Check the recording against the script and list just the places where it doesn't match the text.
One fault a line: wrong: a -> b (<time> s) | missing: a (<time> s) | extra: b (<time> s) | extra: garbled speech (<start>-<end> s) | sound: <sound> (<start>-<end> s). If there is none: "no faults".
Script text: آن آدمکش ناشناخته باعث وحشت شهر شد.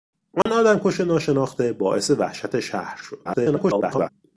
sound: dropout (0.4-0.5 s)
extra: garbled speech (3.2-4.1 s)